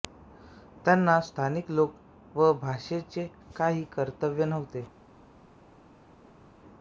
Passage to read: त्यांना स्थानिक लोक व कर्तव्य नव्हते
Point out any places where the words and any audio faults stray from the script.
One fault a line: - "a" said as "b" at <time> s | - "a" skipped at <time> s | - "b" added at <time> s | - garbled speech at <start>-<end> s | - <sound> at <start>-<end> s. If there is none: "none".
- "भाषेचे काही" added at 2.6 s